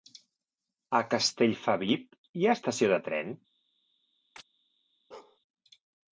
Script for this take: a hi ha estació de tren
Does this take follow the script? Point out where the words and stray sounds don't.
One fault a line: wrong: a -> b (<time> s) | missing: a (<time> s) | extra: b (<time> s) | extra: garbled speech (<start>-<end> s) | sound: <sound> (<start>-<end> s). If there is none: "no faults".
extra: castellfabib (1.1 s)
sound: chirp (4.4-4.4 s)
sound: bark (5.1-5.4 s)